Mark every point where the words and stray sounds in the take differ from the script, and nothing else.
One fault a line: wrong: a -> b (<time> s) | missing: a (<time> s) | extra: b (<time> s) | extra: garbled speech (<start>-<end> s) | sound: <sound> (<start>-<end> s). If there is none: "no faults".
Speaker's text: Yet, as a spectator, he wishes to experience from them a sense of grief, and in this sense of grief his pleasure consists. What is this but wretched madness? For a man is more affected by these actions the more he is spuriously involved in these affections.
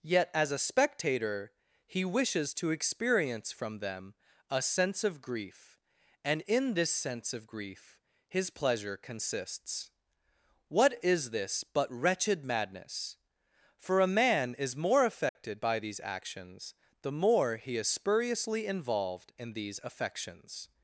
sound: dropout (15.3-15.4 s)